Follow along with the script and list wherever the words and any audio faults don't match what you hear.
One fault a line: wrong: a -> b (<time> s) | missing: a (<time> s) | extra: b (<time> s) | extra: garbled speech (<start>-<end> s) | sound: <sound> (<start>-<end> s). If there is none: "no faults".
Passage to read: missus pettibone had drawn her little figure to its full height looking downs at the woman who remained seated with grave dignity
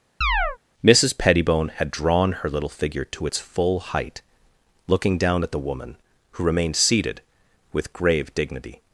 sound: chirp (0.2-0.6 s)
wrong: downs -> down (5.2 s)